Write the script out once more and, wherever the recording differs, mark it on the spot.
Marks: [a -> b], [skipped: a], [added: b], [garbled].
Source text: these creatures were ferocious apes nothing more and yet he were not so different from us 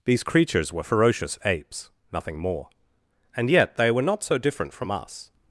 these creatures were ferocious apes nothing more and yet [he -> they] were not so different from us